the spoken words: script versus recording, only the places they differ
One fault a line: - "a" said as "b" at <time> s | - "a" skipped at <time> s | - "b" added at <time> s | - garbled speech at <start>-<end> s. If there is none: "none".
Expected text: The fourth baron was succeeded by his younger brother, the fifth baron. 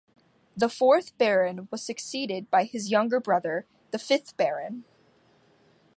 none